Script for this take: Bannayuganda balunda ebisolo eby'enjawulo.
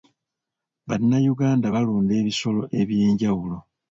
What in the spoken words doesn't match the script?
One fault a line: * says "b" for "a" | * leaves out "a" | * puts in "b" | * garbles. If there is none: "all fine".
all fine